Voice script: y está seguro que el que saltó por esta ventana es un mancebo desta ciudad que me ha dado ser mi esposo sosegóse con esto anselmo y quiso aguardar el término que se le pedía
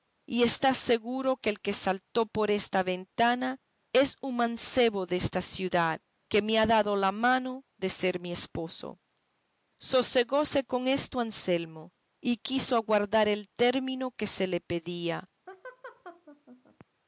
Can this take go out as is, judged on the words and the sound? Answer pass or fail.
fail